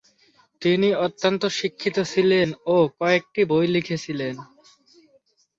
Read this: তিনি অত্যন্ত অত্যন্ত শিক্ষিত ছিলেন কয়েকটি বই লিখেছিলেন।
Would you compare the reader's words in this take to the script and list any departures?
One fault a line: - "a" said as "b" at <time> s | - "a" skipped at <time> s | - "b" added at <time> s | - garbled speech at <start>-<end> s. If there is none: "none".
- "অত্যন্ত" skipped at 1.4 s
- "ও" added at 2.7 s